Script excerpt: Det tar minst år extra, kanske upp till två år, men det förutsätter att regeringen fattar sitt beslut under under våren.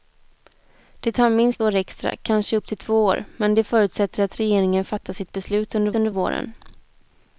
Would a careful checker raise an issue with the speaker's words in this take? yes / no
no